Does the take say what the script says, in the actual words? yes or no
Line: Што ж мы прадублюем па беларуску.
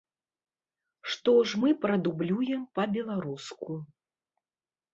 yes